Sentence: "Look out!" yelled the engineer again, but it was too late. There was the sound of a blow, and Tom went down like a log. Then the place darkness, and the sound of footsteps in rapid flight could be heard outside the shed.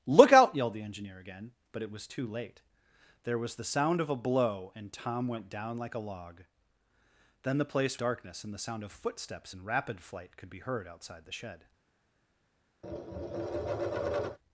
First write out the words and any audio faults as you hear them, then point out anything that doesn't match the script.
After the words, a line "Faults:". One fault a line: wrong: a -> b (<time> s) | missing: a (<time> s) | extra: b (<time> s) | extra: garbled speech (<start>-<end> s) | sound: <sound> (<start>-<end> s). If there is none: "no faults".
"Look out!" yelled the engineer again, but it was too late. There was the sound of a blow, and Tom went down like a log. Then the place darkness, and the sound of footsteps in rapid flight could be heard outside the shed.
Faults:
sound: tap (12.8-14.4 s)